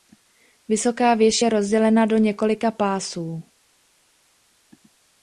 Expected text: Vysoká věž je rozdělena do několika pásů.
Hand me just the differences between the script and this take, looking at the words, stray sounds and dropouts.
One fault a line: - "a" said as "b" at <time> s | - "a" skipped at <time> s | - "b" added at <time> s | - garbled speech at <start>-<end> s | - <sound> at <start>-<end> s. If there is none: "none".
none